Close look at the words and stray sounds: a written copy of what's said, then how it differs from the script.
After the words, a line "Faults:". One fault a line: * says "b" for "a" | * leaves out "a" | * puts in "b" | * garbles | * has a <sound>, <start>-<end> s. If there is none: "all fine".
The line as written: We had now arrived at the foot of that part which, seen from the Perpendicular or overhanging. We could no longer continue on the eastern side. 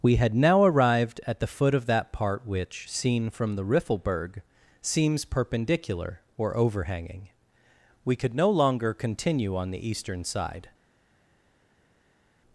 We had now arrived at the foot of that part which, seen from the Riffelberg, seems perpendicular or overhanging. We could no longer continue on the eastern side.
Faults:
* puts in "Riffelberg seems"